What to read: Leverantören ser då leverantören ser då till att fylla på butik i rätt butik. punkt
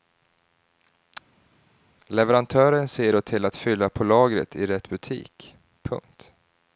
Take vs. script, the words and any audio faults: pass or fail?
fail